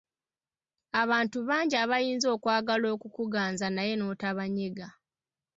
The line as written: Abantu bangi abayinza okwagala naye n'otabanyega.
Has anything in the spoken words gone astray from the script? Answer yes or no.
yes